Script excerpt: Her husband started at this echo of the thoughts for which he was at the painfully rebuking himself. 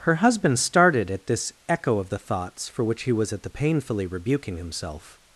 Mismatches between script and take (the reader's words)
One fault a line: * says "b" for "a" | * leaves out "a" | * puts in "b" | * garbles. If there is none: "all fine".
all fine